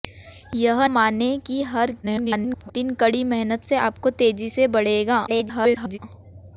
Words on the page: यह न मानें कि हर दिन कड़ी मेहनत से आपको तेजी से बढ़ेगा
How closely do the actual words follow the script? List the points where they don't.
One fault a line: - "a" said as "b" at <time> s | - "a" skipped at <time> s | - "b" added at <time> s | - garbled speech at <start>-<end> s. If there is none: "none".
- "न" skipped at 0.8 s
- garbled speech at 2.0-2.7 s
- garbled speech at 5.3-6.0 s